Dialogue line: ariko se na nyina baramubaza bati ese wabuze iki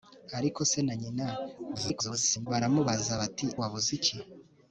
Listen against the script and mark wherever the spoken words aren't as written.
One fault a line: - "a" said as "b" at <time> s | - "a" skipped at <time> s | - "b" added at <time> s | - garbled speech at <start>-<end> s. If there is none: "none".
- garbled speech at 1.7-2.5 s
- "ese" skipped at 3.5 s